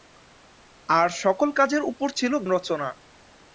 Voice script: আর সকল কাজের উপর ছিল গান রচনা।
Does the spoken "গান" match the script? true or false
false